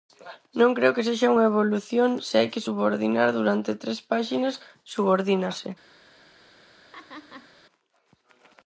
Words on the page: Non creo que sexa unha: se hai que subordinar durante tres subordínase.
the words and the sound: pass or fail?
fail